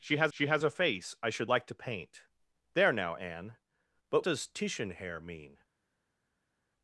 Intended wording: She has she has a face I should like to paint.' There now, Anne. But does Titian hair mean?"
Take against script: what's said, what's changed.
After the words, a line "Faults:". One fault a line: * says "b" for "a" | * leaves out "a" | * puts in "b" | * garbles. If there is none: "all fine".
She has she has a face I should like to paint.' There now, Anne. But does Titian hair mean?"
Faults:
all fine